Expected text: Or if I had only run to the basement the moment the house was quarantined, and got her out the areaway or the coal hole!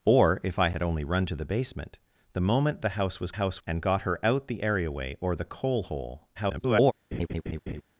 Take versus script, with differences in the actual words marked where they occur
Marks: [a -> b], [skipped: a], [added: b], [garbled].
Or if I had only run to the basement the moment the house was [quarantined, -> house] and got her out the areaway or the coal hole! [garbled]